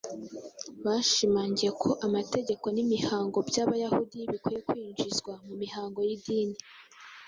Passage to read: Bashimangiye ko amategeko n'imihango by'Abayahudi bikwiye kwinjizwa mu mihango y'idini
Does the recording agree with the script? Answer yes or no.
yes